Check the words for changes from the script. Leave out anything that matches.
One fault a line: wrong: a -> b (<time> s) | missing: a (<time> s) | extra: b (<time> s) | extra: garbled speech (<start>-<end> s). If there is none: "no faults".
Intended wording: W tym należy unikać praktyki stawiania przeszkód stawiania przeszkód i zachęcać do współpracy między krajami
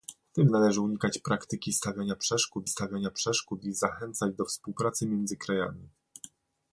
no faults